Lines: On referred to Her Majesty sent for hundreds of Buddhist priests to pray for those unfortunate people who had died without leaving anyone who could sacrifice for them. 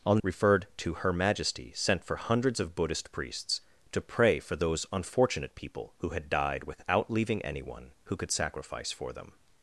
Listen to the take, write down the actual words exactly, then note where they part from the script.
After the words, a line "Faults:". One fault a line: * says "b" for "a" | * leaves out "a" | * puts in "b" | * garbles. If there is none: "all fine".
On referred to Her Majesty sent for hundreds of Buddhist priests to pray for those unfortunate people who had died without leaving anyone who could sacrifice for them.
Faults:
all fine